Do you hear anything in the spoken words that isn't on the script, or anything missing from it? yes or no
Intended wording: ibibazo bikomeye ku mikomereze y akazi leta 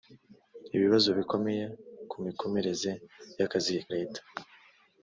no